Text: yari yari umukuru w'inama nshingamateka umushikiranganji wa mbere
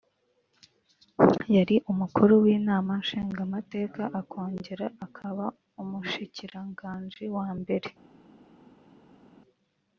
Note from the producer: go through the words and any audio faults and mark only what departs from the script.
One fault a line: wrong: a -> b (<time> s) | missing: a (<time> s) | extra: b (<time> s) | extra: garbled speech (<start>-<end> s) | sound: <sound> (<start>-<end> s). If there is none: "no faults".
missing: yari (1.8 s)
extra: akongera akaba (4.2 s)